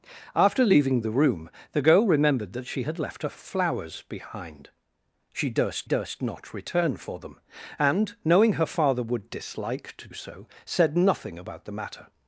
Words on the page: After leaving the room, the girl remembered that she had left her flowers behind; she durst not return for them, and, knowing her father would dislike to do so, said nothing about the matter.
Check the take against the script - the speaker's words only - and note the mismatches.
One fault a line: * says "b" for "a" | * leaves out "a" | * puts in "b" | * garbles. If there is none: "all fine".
* puts in "durst"
* leaves out "do"